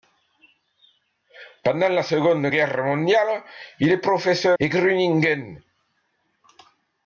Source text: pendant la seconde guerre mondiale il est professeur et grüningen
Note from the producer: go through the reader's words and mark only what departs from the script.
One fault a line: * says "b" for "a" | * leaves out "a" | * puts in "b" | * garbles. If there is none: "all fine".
all fine